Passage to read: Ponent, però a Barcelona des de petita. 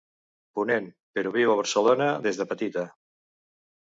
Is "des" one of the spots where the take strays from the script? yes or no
no